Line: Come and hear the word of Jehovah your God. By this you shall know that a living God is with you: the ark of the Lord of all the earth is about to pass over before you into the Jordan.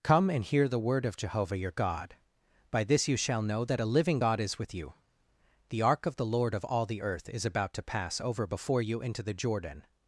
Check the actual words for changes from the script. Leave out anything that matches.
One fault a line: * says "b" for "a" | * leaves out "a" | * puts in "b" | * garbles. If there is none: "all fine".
all fine